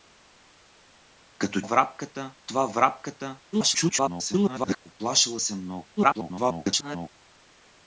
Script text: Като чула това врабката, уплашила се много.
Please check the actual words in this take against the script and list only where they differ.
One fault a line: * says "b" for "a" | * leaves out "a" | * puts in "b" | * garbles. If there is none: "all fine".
* says "врабката" for "чула"
* garbles
* garbles